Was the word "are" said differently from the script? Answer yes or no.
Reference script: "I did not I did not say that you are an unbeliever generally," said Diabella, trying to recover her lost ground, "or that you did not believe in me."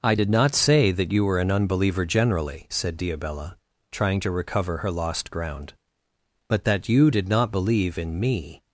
yes